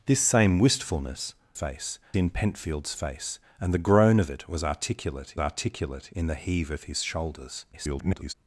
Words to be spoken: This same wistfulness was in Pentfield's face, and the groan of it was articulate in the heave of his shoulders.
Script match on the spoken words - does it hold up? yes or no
no